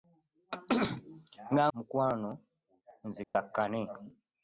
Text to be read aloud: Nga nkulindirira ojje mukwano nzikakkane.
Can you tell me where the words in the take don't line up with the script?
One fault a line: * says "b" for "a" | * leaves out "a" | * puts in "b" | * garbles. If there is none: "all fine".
* leaves out "nkulindirira ojje"